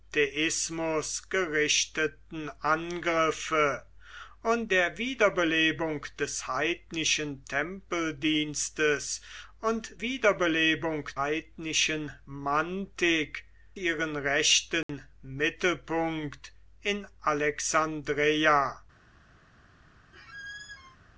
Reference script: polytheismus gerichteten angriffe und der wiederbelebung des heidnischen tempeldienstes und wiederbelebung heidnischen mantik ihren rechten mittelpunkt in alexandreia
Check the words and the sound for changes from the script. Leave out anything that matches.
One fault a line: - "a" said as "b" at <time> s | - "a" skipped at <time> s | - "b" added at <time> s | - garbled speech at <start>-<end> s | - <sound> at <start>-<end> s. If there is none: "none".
- dropout at 14.8-14.9 s
- squeak at 20.1-21.0 s